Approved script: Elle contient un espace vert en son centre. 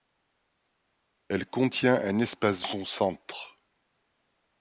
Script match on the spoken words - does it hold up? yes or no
no